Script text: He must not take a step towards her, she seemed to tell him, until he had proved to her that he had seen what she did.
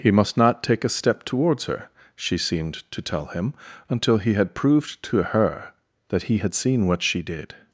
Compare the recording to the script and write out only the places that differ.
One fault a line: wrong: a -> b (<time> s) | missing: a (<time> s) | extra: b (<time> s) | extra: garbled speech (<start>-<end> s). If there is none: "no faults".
no faults